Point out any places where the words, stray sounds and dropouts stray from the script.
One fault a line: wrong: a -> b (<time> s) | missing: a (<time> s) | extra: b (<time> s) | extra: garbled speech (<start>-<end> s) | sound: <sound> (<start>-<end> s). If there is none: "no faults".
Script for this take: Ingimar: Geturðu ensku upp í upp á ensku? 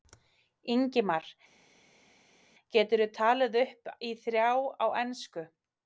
wrong: ensku -> talið (3.2 s)
wrong: upp -> þrjá (4.3 s)